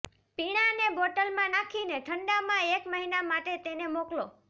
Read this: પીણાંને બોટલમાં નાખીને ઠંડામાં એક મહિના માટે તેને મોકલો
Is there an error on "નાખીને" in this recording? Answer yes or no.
no